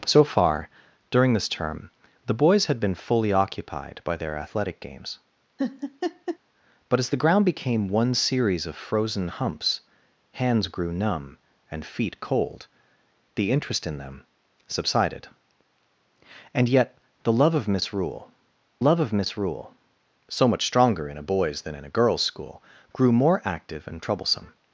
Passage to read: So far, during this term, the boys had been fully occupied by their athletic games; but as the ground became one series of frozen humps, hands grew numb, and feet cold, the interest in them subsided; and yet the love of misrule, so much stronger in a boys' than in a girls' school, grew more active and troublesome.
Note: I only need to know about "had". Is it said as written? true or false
true